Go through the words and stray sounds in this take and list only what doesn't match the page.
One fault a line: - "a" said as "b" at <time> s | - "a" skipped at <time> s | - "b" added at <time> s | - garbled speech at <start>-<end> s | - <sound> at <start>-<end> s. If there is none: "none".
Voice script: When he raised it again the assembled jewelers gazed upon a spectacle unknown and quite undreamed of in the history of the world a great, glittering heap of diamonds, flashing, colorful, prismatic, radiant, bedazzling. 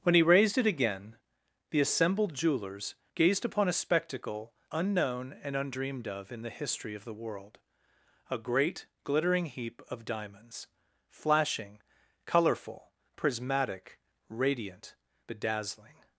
- "quite" skipped at 5.5 s